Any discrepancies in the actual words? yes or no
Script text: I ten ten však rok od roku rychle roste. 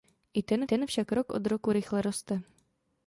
no